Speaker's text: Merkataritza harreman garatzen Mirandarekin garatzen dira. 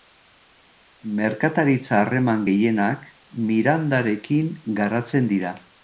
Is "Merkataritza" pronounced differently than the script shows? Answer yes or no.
no